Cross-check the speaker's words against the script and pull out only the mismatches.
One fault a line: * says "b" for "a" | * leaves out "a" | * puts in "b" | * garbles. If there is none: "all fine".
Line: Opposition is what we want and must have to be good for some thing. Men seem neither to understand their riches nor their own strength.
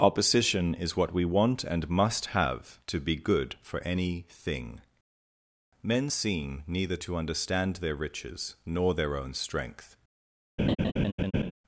* says "any" for "some"